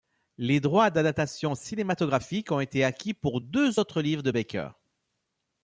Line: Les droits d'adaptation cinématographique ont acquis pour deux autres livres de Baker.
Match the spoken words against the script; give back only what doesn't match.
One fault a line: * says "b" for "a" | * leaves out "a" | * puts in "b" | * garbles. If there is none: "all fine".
* puts in "été"